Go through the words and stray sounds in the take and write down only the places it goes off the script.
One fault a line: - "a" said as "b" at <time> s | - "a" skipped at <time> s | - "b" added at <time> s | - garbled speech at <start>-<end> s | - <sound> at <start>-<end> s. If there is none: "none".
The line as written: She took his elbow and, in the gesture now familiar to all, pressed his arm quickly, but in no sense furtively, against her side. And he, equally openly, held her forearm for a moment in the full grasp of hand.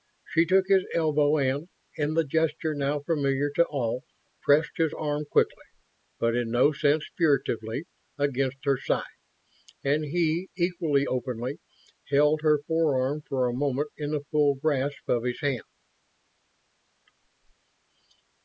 - "his" added at 15.2 s